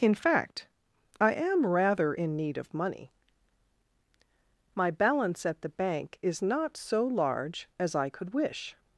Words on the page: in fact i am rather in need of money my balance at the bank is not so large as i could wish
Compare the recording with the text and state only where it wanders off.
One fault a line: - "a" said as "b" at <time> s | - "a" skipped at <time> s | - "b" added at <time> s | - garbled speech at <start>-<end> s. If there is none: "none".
none